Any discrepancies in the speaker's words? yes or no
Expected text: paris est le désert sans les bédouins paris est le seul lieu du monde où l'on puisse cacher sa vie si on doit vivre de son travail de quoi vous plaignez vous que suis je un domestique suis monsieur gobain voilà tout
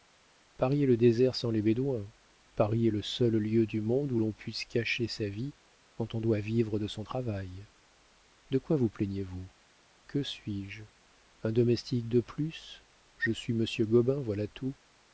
yes